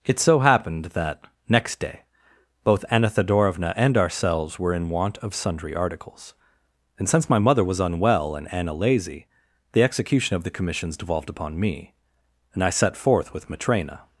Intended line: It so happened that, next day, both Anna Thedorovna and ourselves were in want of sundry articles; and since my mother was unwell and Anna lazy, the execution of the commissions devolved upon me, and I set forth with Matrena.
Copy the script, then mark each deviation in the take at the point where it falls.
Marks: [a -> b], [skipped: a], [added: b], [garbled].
It so happened that, next day, both Anna Thedorovna and ourselves were in want of sundry articles; and since my mother was unwell and Anna lazy, the execution of the commissions devolved upon me, and I set forth with Matrena.